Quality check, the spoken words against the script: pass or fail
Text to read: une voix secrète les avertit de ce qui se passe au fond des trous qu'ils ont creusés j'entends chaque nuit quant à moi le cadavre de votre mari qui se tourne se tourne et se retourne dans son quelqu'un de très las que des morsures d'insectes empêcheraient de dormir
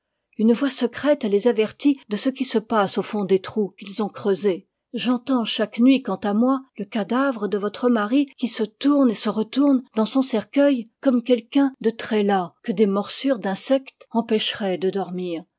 fail